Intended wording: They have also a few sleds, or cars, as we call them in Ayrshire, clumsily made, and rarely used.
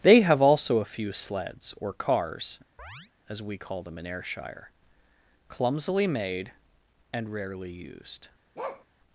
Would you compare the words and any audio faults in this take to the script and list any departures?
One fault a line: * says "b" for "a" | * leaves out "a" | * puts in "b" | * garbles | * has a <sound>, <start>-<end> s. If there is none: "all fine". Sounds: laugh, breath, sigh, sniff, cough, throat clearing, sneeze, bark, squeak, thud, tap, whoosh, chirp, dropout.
* has a chirp, 2.8-3.1 s
* has a bark, 8.6-8.9 s